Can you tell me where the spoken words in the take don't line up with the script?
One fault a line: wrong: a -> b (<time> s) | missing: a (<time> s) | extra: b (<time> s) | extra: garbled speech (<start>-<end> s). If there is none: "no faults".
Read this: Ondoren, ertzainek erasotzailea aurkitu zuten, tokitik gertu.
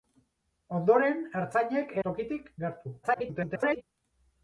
missing: erasotzailea aurkitu zuten (1.9 s)
extra: garbled speech (3.0-3.8 s)